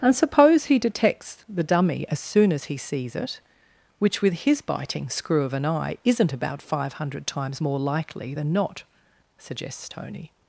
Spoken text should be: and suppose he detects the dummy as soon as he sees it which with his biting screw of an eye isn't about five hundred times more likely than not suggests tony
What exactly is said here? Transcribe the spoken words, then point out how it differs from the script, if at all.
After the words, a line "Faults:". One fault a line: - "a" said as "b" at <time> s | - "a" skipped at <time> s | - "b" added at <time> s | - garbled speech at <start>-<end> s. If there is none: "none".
and suppose he detects the dummy as soon as he sees it which with his biting screw of an eye isn't about five hundred times more likely than not suggests tony
Faults:
none